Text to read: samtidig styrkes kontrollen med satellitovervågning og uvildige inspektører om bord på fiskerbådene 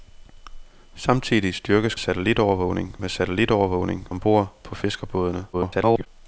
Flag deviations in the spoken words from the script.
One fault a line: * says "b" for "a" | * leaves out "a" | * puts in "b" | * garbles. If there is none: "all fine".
* says "satellitovervågning" for "kontrollen"
* leaves out "og uvildige inspektører"
* garbles